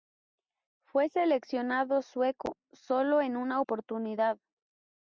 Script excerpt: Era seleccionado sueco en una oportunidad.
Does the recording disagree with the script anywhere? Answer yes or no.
yes